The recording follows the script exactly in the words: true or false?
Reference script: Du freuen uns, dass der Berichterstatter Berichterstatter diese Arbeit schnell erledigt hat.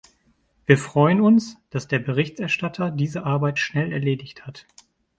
false